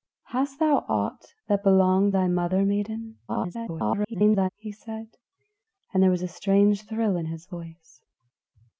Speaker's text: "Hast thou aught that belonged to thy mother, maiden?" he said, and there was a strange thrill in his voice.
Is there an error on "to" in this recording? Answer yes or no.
yes